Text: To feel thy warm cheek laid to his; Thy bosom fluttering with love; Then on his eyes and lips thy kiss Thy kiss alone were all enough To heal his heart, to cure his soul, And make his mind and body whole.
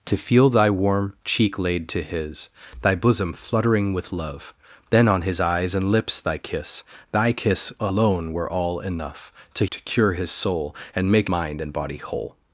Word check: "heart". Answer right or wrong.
wrong